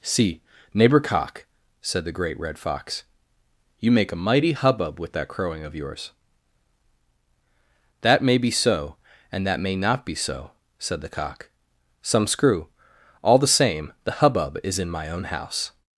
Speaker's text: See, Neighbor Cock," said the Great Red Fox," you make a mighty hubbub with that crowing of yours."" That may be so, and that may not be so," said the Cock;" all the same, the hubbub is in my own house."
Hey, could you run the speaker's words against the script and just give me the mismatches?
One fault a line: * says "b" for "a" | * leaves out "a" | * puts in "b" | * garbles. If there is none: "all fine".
* puts in "some screw"